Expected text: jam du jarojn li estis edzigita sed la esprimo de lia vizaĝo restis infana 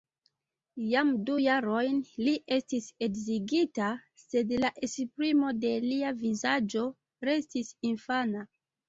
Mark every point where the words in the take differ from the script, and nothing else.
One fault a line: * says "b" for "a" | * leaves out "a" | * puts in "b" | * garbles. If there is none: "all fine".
all fine